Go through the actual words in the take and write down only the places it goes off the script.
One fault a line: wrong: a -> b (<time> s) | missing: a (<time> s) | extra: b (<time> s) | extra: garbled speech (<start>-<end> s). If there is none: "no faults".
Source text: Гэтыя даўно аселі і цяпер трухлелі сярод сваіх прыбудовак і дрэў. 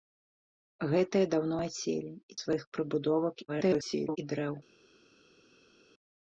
missing: цяпер трухлелі сярод (2.4 s)
extra: garbled speech (3.5-4.2 s)